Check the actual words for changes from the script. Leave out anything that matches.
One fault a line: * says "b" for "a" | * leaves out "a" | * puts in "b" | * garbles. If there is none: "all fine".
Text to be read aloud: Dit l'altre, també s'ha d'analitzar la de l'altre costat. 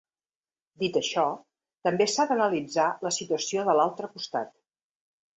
* says "això" for "l'altre"
* puts in "situació"